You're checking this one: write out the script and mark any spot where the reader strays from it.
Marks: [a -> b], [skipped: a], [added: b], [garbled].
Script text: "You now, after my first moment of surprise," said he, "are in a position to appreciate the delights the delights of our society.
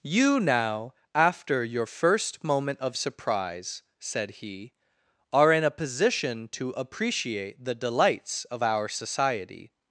"You now, after [my -> your] first moment of surprise," said he, "are in a position to appreciate the delights [skipped: the delights] of our society.